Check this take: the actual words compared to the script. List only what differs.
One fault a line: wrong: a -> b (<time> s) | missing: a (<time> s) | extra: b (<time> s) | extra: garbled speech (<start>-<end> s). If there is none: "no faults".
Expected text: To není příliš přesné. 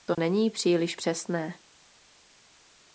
no faults